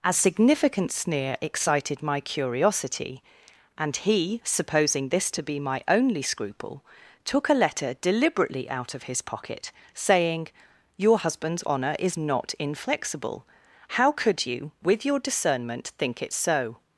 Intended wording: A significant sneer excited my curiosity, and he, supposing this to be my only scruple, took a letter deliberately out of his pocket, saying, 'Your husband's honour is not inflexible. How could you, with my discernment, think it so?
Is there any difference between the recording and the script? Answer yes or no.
yes